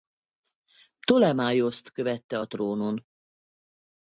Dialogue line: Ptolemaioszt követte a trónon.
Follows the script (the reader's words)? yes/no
yes